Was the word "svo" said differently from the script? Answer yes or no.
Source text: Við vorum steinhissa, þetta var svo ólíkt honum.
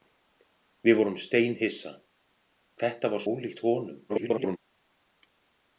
yes